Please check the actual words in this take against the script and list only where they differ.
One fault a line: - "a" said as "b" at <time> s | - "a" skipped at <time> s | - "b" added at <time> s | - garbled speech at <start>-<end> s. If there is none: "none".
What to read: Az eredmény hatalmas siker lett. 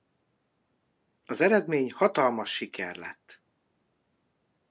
none